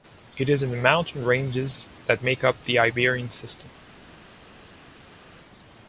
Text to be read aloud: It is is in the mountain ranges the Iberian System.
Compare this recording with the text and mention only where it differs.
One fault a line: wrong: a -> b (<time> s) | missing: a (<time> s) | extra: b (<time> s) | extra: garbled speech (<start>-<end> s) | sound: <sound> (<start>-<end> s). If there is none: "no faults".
missing: is (0.6 s)
extra: that make up (2.1 s)